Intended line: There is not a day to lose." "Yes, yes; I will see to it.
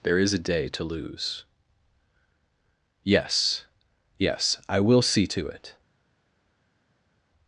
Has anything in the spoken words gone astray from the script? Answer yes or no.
yes